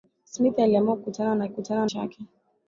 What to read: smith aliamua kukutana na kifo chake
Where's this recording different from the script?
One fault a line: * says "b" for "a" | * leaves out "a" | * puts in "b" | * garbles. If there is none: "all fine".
* says "kukutana" for "kifo"